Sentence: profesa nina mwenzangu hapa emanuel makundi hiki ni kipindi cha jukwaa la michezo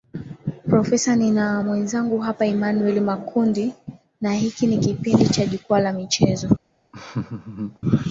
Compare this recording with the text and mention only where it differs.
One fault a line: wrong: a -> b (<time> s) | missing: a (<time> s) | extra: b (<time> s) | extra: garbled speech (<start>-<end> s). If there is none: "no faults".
extra: na (4.2 s)